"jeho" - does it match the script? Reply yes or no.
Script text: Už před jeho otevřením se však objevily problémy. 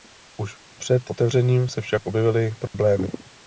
no